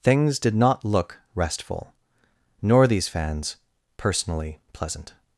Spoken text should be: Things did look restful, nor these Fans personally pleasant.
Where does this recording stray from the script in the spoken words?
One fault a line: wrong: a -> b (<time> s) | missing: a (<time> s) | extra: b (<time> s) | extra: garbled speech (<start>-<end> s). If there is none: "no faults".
extra: not (0.6 s)